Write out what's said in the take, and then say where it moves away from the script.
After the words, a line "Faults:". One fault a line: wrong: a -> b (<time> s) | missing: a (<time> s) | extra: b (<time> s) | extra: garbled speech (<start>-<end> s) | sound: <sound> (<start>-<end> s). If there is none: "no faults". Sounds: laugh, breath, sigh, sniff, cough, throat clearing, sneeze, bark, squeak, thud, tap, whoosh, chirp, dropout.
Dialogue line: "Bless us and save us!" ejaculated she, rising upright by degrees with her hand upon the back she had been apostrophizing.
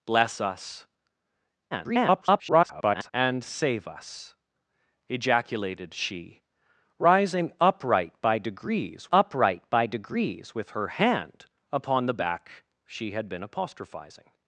"Bless us [garbled] and save us!" ejaculated she, rising upright by degrees upright by degrees with her hand upon the back she had been apostrophizing.
Faults:
extra: garbled speech (1.7-3.1 s)
extra: upright by degrees (9.1 s)